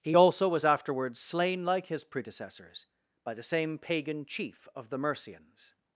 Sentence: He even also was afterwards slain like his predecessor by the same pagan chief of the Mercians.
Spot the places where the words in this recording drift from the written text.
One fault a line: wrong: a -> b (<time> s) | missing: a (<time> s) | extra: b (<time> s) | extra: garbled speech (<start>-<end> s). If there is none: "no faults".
missing: even (0.2 s)
wrong: predecessor -> predecessors (2.0 s)